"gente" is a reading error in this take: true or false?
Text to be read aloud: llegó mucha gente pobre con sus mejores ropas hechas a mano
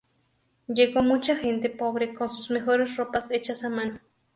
false